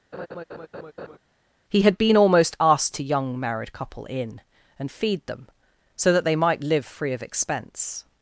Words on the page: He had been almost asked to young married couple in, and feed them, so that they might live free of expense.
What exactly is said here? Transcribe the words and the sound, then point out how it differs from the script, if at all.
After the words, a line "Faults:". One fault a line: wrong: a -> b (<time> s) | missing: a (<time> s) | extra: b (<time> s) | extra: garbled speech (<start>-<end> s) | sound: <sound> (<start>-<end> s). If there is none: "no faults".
He had been almost asked to young married couple in, and feed them, so that they might live free of expense.
Faults:
sound: laugh (0.1-1.2 s)